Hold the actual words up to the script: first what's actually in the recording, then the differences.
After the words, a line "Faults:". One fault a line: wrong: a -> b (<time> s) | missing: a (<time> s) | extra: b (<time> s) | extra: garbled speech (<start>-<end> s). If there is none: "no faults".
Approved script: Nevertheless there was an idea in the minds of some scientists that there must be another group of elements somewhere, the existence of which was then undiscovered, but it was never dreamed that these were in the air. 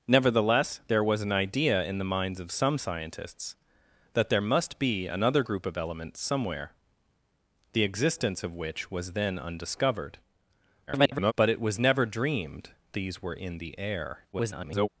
Nevertheless there was an idea in the minds of some scientists that there must be another group of elements somewhere, the existence of which was then undiscovered, [garbled] but it was never dreamed these were in the air. [garbled]
Faults:
extra: garbled speech (10.9-11.3 s)
missing: that (12.7 s)
extra: garbled speech (14.3-14.9 s)